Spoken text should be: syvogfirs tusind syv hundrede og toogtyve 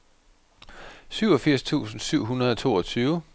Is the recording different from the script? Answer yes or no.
no